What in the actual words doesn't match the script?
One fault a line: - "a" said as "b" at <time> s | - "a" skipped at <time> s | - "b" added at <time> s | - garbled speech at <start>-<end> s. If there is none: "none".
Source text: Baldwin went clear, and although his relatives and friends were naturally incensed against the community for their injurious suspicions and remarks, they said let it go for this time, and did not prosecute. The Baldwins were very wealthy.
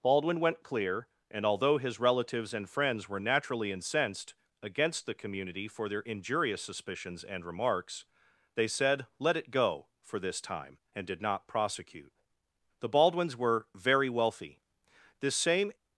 - "This same" added at 15.2 s